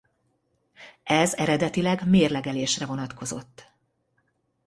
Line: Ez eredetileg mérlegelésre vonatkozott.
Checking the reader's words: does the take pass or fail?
pass